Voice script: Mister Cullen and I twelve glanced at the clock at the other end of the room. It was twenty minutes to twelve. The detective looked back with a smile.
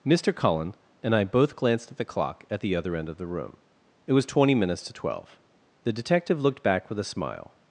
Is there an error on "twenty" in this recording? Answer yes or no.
no